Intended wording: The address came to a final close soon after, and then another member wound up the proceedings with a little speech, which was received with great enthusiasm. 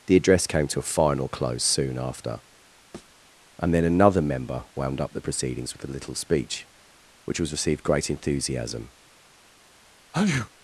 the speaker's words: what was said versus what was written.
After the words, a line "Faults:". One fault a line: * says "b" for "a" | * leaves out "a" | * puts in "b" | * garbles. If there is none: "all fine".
The address came to a final close soon after, and then another member wound up the proceedings with a little speech, which was received great enthusiasm.
Faults:
* leaves out "with"